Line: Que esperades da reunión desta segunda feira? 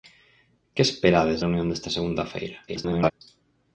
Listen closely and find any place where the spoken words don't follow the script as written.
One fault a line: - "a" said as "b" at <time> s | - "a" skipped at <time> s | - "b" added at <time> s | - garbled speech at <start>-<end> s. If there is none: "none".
- "da" skipped at 1.4 s
- garbled speech at 2.7-3.1 s